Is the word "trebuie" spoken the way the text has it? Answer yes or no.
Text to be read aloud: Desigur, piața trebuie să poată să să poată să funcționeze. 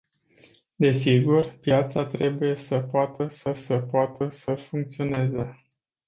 yes